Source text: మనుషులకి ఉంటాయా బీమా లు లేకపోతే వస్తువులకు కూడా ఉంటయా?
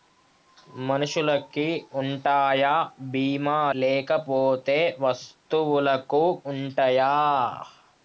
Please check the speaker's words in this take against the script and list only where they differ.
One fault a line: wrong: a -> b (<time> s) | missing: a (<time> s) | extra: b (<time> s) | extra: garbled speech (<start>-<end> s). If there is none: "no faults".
missing: లు (3.6 s)
missing: కూడా (6.2 s)